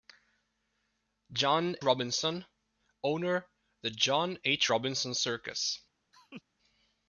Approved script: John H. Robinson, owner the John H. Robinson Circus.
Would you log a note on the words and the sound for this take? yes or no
yes